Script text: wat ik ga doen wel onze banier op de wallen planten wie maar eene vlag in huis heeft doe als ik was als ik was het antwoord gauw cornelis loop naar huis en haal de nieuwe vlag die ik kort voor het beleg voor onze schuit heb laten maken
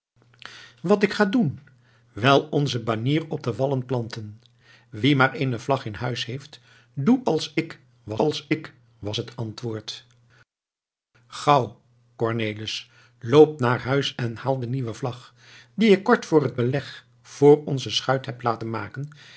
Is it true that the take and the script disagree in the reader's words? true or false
false